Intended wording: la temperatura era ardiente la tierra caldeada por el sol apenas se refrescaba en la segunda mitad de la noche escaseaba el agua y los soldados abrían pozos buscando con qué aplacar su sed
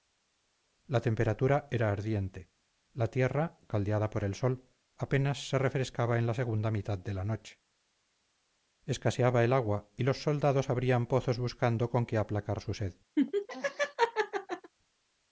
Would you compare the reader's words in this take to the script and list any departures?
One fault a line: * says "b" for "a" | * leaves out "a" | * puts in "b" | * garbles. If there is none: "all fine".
all fine